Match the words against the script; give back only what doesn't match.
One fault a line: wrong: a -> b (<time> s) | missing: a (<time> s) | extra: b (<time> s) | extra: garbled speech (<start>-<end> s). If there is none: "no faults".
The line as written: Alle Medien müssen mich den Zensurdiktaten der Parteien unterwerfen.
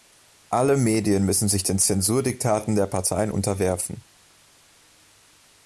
wrong: mich -> sich (1.5 s)